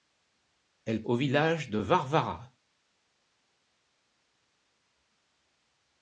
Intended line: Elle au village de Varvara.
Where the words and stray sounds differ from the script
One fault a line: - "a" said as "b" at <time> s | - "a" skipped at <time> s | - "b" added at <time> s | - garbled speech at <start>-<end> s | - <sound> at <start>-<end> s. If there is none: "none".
none